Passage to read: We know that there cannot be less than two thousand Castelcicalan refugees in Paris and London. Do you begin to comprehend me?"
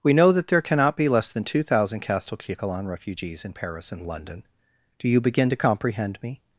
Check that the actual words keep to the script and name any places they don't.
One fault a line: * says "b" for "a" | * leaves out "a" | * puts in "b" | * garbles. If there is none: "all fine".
all fine